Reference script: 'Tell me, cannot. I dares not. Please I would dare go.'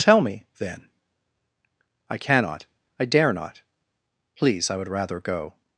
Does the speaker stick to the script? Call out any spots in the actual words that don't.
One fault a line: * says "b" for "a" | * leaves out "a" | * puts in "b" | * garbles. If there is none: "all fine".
* puts in "then I"
* says "dare" for "dares"
* says "rather" for "dare"